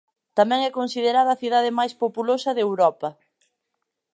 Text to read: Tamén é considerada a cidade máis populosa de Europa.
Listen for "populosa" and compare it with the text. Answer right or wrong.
right